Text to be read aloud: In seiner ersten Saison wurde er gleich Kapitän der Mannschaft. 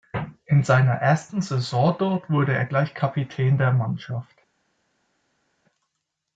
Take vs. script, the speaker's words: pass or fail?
fail